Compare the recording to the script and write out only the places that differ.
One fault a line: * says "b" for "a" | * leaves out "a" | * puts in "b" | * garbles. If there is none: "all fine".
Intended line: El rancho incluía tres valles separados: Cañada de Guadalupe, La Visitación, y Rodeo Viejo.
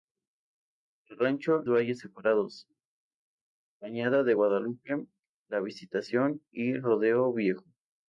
* leaves out "incluía tres"